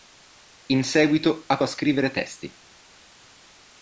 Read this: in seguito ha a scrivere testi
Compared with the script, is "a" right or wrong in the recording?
right